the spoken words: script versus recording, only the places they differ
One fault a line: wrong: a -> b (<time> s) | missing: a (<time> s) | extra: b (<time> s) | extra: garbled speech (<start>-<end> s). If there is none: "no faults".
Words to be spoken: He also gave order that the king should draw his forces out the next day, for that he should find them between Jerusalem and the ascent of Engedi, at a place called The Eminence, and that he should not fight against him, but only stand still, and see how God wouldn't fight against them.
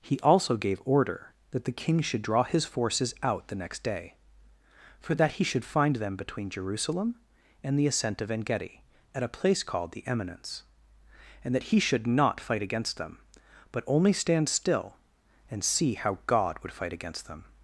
wrong: him -> them (13.0 s)
wrong: wouldn't -> would (16.6 s)